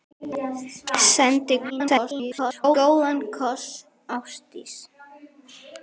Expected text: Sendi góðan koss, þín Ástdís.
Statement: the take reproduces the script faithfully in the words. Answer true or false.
false